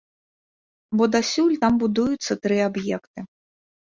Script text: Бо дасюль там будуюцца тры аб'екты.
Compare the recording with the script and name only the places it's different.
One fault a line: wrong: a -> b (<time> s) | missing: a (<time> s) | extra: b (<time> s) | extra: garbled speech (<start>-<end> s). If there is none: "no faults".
no faults